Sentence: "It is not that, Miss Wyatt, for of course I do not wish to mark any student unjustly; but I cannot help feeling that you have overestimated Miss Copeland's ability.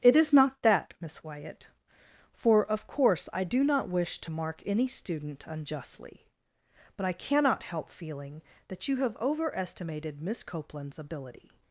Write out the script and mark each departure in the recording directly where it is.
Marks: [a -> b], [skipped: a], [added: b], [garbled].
"It is not that, Miss Wyatt, for of course I do not wish to mark any student unjustly; but I cannot help feeling that you have overestimated Miss Copeland's ability.